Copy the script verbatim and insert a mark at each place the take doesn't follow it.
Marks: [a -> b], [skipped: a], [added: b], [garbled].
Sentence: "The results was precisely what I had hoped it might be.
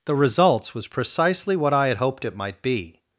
"The results was precisely what I had hoped it might be.